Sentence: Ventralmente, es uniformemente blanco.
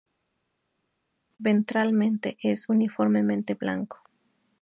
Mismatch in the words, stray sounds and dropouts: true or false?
false